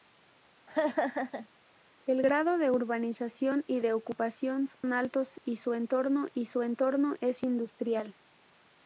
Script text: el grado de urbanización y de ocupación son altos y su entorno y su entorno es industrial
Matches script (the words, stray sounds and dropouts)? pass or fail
fail